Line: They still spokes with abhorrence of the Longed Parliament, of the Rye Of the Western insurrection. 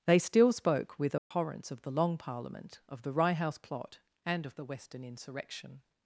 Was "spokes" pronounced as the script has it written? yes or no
no